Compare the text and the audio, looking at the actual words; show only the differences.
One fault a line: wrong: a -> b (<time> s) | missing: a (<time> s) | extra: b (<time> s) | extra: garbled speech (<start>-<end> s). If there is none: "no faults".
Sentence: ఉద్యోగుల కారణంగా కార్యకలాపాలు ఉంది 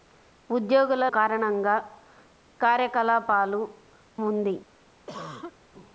no faults